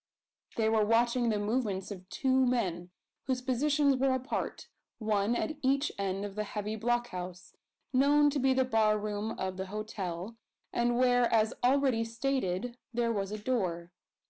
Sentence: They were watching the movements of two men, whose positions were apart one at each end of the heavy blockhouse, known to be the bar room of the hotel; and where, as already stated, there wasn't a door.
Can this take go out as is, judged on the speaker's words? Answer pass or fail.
fail